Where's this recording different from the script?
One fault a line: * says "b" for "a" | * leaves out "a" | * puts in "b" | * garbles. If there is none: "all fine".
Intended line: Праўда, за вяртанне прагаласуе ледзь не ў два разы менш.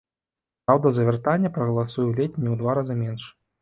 all fine